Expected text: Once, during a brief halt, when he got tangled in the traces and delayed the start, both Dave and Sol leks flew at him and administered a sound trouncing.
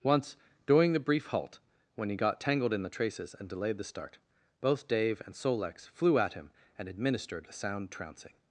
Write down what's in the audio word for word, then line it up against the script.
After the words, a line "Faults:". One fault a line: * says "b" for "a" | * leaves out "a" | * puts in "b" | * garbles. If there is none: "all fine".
Once, during the brief halt, when he got tangled in the traces and delayed the start, both Dave and Sol leks flew at him and administered a sound trouncing.
Faults:
* says "the" for "a"